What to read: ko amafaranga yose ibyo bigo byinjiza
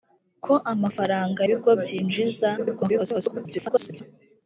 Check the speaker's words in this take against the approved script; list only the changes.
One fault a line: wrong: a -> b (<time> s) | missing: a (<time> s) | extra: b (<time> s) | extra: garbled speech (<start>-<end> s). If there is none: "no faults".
missing: yose ibyo (1.4 s)
extra: garbled speech (2.6-4.0 s)